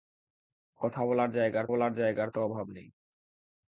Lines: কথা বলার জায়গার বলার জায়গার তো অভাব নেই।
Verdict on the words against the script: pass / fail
pass